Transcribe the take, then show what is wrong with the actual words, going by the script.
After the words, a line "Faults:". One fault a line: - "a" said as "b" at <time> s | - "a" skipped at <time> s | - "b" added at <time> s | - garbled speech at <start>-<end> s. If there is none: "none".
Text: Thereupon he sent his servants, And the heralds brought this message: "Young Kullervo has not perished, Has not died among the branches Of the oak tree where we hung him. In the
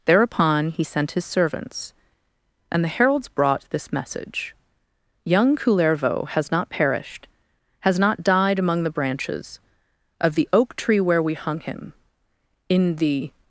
Thereupon he sent his servants, And the heralds brought this message: "Young Kullervo has not perished, Has not died among the branches Of the oak tree where we hung him. In the
Faults:
none